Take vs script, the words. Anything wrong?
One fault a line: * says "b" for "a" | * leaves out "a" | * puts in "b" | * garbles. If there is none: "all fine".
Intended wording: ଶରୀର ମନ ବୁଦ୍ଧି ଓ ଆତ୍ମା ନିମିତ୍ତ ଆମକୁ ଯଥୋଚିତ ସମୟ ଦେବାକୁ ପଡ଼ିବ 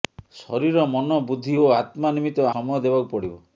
* leaves out "ଆମକୁ ଯଥୋଚିତ"